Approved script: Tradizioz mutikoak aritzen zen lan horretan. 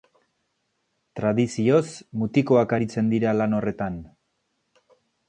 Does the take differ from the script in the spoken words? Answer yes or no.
yes